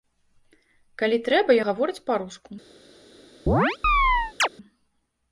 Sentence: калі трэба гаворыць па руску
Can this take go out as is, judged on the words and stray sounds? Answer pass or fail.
fail